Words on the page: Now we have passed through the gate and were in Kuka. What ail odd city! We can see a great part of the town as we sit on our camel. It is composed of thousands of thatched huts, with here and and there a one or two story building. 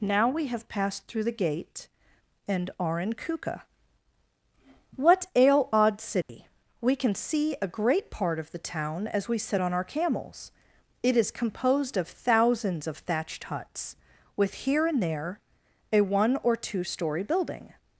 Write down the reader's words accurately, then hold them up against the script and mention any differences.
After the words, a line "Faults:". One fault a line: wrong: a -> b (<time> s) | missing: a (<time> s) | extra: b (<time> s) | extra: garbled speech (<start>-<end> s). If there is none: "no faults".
Now we have passed through the gate and are in Kuka. What ail odd city! We can see a great part of the town as we sit on our camels. It is composed of thousands of thatched huts, with here and there a one or two story building.
Faults:
wrong: were -> are (2.8 s)
wrong: camel -> camels (9.8 s)
missing: and (15.0 s)